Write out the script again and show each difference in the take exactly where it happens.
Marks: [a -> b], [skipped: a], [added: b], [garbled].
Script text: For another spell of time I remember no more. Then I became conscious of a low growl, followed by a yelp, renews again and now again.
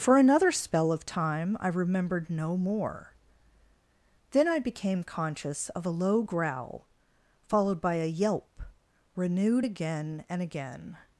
For another spell of time I [remember -> remembered] no more. Then I became conscious of a low growl, followed by a yelp, [renews -> renewed] again and [skipped: now] again.